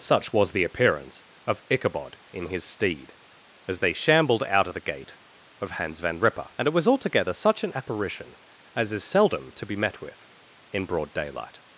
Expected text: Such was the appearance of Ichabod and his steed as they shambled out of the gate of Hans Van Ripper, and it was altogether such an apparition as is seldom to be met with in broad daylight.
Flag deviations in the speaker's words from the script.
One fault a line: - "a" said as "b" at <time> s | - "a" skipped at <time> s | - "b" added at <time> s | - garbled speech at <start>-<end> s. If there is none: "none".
- "and" said as "in" at 2.3 s